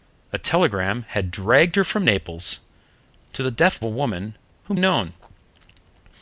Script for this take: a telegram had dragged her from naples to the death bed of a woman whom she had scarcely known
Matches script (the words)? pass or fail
fail